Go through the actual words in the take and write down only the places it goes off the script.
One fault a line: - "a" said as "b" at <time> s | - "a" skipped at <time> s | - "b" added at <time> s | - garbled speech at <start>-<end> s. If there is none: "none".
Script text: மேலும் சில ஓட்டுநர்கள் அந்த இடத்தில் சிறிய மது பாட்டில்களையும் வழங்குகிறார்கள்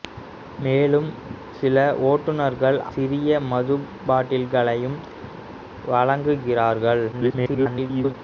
- "அந்த இடத்தில்" skipped at 2.8 s
- garbled speech at 7.1-8.1 s